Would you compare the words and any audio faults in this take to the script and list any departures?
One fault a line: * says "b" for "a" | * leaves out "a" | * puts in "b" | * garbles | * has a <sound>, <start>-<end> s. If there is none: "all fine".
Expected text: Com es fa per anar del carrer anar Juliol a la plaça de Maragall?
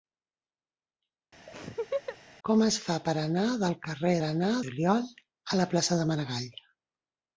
* has a laugh, 1.5-2.2 s